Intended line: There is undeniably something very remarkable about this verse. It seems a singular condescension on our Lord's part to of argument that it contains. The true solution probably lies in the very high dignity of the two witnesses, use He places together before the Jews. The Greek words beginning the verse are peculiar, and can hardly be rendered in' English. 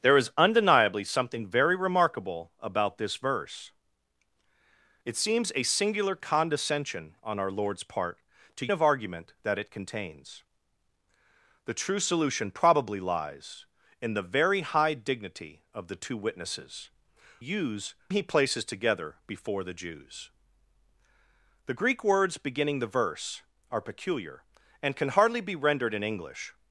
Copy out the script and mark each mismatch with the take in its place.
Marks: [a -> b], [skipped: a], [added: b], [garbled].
There is undeniably something very remarkable about this verse. It seems a singular condescension on our Lord's part to of argument that it contains. The true solution probably lies in the very high dignity of the two witnesses, use He places together before the Jews. The Greek words beginning the verse are peculiar, and can hardly be rendered in' English.